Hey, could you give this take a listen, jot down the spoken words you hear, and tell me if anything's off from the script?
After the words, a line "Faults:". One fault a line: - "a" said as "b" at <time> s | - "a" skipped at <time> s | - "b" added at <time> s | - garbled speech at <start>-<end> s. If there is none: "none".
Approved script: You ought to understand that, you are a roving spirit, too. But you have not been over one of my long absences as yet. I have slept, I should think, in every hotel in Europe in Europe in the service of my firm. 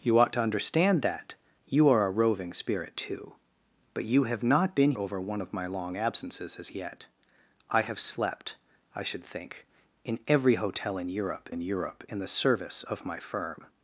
You ought to understand that, you are a roving spirit, too. But you have not been over one of my long absences as yet. I have slept, I should think, in every hotel in Europe in Europe in the service of my firm.
Faults:
none